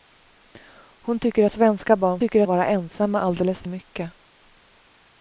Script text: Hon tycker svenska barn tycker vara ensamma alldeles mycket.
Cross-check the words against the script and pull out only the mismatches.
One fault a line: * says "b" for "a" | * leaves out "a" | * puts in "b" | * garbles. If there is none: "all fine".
all fine